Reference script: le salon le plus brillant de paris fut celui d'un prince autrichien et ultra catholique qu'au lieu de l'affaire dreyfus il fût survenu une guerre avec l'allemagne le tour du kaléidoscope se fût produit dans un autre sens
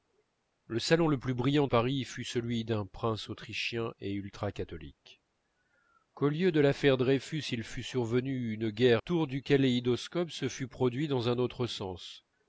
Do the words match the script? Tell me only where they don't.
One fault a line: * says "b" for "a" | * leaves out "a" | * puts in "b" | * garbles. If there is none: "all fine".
* leaves out "de"
* leaves out "avec l'allemagne le"